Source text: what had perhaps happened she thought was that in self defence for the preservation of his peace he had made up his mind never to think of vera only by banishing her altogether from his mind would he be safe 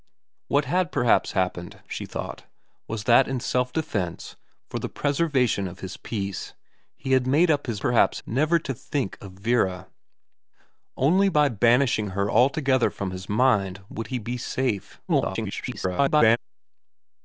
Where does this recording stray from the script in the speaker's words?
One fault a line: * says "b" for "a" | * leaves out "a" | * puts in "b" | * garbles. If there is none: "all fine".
* says "perhaps" for "mind"
* garbles